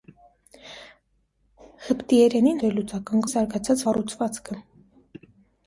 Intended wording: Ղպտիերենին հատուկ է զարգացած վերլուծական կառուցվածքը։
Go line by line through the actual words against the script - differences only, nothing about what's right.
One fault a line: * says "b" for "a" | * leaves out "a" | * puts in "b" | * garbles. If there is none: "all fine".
* says "վերլուծական" for "հատուկ"
* leaves out "վերլուծական"